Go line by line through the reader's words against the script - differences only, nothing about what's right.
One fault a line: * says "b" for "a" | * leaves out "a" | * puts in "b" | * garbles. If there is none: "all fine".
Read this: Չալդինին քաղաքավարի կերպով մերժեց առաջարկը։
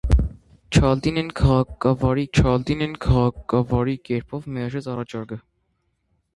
* puts in "չալդինին քաղաքավարի"